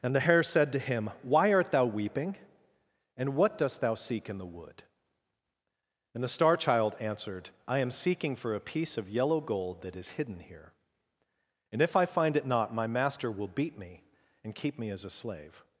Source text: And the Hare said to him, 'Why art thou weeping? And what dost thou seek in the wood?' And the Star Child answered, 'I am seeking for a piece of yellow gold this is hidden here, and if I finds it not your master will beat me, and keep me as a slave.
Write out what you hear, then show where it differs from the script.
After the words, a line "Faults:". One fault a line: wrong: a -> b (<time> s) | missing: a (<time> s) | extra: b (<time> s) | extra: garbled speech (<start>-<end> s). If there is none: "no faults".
And the Hare said to him, 'Why art thou weeping? And what dost thou seek in the wood?' And the Star Child answered, 'I am seeking for a piece of yellow gold that is hidden here, and if I find it not my master will beat me, and keep me as a slave.
Faults:
wrong: this -> that (9.8 s)
wrong: finds -> find (12.1 s)
wrong: your -> my (12.7 s)